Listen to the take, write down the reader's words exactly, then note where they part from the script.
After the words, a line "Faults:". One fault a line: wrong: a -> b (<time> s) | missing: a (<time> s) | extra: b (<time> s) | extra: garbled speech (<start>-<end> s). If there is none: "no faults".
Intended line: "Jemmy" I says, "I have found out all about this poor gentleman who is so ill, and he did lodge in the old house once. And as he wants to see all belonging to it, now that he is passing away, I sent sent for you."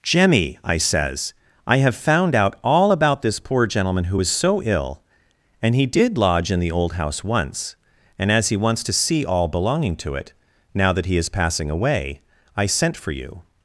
"Jemmy" I says, "I have found out all about this poor gentleman who is so ill, and he did lodge in the old house once. And as he wants to see all belonging to it, now that he is passing away, I sent for you."
Faults:
missing: sent (13.0 s)